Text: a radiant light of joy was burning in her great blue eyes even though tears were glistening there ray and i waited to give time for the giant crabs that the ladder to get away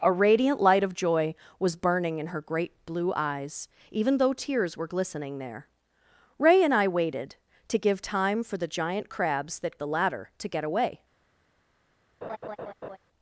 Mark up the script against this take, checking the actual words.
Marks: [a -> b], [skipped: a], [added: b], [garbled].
a radiant light of joy was burning in her great blue eyes even though tears were glistening there ray and i waited to give time for the giant crabs that the ladder to get away